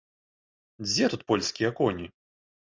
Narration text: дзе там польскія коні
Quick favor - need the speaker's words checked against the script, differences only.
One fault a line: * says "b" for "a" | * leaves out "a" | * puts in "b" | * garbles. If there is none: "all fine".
* says "тут" for "там"